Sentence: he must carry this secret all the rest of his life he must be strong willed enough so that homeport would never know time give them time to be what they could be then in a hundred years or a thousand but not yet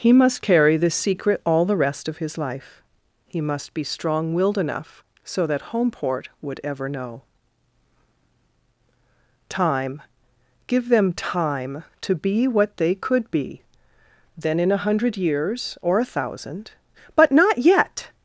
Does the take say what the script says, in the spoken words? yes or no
no